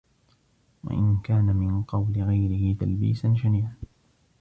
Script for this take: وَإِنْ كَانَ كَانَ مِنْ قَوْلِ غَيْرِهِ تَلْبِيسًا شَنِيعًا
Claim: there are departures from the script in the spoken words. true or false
true